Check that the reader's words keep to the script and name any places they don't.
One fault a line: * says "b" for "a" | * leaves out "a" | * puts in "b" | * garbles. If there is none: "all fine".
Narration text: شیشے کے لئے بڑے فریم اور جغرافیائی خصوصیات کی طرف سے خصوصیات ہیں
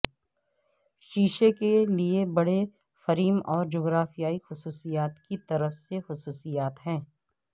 all fine